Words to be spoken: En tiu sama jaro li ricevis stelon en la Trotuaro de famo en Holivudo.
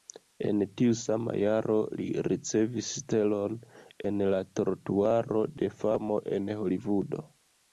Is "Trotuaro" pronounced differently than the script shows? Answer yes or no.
no